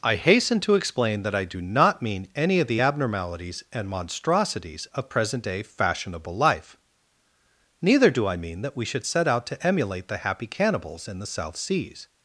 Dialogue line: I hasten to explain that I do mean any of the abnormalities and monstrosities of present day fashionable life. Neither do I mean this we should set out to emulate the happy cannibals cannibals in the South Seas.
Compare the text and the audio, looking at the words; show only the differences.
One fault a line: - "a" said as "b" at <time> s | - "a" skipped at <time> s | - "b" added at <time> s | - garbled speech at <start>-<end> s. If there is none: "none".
- "not" added at 1.6 s
- "this" said as "that" at 8.6 s
- "cannibals" skipped at 11.1 s